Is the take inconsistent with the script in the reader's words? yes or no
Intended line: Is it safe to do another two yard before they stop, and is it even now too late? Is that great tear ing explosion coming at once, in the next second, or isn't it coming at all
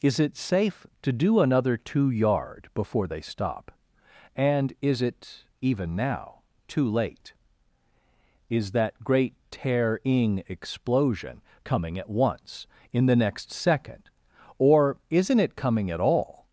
no